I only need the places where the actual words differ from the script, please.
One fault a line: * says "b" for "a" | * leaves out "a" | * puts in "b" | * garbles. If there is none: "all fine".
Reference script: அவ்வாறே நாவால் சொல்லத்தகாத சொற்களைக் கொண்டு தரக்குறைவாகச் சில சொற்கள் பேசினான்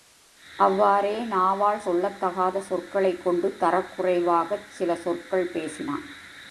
all fine